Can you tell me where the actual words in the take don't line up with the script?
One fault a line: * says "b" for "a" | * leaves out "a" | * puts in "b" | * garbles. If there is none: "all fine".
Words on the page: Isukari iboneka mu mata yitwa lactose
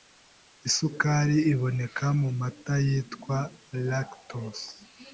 all fine